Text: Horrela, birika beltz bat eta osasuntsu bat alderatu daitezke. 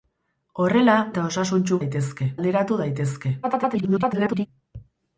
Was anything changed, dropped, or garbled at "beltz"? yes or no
yes